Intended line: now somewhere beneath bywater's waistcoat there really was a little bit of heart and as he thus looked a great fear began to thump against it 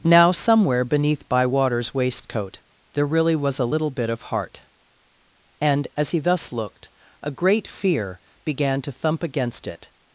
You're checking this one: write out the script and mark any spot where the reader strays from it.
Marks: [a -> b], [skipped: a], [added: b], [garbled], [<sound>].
now somewhere beneath bywater's waistcoat there really was a little bit of heart and as he thus looked a great fear began to thump against it